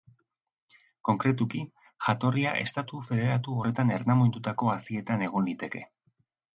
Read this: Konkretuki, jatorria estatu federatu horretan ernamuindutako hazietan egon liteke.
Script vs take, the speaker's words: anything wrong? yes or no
no